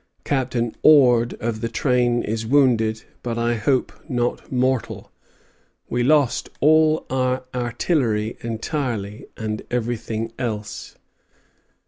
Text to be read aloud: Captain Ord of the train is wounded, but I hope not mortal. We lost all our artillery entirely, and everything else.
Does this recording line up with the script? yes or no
yes